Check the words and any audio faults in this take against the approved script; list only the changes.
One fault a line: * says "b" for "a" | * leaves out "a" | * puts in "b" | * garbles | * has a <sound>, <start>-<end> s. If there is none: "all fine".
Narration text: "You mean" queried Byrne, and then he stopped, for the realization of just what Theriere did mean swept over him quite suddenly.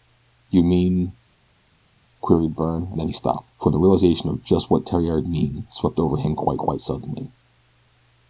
* leaves out "and"
* leaves out "did"
* puts in "quite"